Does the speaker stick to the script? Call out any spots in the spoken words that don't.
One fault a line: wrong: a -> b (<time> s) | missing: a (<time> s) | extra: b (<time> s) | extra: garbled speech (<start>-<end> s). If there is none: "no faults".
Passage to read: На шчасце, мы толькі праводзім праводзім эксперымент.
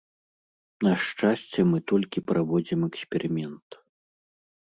missing: праводзім (2.8 s)